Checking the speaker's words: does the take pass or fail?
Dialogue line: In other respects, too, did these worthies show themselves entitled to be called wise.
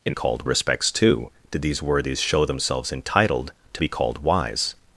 fail